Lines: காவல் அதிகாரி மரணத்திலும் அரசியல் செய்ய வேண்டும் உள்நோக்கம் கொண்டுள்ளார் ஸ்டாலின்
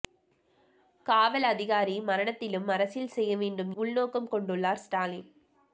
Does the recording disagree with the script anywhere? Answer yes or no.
no